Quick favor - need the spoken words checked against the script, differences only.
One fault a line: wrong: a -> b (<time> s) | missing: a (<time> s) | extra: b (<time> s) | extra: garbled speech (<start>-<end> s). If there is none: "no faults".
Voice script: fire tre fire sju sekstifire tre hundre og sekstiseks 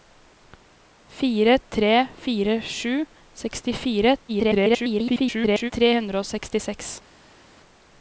extra: garbled speech (4.3-5.7 s)